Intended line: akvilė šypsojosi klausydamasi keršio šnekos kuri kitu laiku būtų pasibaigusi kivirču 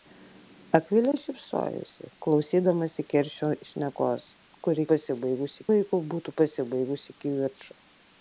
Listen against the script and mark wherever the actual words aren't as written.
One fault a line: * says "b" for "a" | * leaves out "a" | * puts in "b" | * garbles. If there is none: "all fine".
* says "pasibaigusi" for "kitu"